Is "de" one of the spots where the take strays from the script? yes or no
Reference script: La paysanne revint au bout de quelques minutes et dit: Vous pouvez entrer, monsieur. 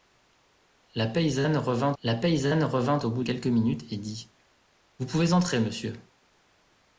yes